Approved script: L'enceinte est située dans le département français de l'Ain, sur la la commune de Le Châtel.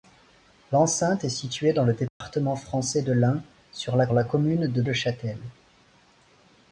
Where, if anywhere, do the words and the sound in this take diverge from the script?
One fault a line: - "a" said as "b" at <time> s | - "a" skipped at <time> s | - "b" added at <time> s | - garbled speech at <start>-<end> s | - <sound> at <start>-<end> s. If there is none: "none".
- dropout at 2.1-2.2 s